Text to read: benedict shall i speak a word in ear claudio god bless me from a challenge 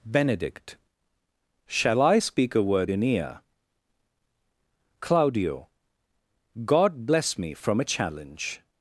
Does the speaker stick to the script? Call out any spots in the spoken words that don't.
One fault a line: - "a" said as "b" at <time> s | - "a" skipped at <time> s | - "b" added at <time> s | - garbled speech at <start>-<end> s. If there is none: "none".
none